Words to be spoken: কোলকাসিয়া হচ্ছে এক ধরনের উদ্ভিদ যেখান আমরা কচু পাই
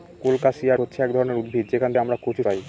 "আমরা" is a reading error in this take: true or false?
false